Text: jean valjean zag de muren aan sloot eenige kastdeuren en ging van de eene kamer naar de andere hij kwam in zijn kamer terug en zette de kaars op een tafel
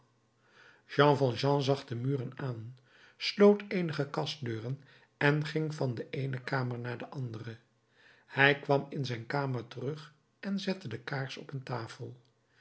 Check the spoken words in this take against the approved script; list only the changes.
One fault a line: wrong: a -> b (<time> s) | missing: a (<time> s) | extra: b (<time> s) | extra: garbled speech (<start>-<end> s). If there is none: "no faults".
no faults